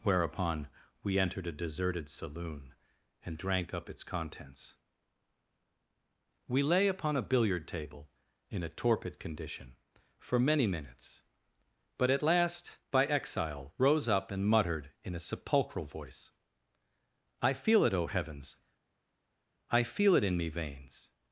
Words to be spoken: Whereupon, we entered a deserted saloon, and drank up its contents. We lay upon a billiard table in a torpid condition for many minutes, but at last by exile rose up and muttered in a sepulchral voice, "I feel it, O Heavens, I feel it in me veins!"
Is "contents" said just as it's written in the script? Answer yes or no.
yes